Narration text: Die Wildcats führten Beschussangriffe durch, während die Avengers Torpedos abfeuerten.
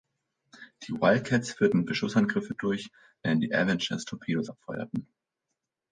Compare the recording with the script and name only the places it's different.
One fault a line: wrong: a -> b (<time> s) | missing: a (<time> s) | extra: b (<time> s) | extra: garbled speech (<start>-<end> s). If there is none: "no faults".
no faults